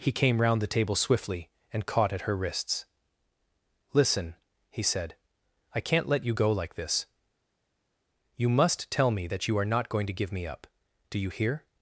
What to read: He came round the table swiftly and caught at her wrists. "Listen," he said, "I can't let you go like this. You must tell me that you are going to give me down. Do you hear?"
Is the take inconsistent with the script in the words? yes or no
yes